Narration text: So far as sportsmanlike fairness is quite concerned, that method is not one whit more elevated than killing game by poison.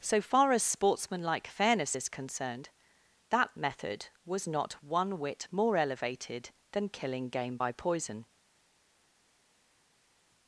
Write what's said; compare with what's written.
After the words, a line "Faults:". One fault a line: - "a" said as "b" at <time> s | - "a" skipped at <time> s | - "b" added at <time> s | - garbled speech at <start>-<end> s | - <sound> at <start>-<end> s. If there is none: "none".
So far as sportsmanlike fairness is concerned, that method was not one whit more elevated than killing game by poison.
Faults:
- "quite" skipped at 2.1 s
- "is" said as "was" at 4.2 s